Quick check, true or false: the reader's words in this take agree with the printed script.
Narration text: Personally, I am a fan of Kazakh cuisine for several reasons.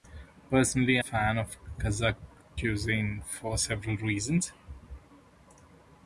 false